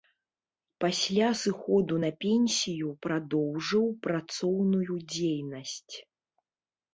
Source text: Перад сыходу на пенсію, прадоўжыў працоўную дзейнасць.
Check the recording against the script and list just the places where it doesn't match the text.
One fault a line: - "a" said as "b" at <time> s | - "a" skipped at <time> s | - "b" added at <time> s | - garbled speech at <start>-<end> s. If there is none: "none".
- "Перад" said as "Пасля" at 0.8 s